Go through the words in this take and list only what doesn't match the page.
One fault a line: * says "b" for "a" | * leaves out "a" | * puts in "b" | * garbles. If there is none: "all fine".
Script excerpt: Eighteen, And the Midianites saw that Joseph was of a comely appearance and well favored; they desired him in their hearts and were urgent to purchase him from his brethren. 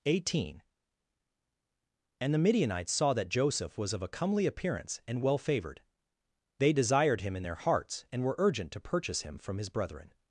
all fine